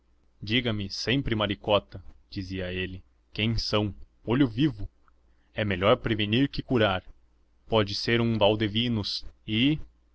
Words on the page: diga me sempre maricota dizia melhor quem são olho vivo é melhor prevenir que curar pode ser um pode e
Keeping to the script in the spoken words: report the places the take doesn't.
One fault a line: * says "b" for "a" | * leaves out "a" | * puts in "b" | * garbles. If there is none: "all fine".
* says "ele" for "melhor"
* says "valdevinos" for "pode"